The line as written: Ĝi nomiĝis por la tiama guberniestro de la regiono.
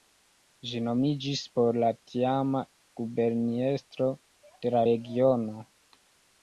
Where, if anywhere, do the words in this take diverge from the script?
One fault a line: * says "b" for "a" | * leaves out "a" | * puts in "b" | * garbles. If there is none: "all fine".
all fine